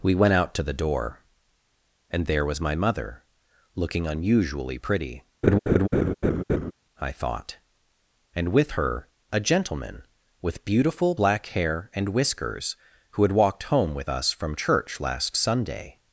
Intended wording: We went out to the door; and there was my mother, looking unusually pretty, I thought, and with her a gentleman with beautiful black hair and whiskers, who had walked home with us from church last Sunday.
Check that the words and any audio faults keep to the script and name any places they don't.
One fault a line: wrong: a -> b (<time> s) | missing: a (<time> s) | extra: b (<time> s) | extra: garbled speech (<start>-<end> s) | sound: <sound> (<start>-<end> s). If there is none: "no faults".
sound: laugh (5.4-6.7 s)